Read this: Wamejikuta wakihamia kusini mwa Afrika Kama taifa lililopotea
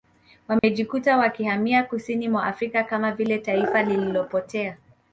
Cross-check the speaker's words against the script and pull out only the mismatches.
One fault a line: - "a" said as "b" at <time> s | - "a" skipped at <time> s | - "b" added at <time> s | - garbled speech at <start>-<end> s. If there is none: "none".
- "vile" added at 3.1 s